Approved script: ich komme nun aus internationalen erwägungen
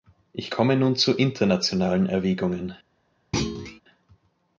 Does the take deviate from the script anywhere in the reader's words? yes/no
yes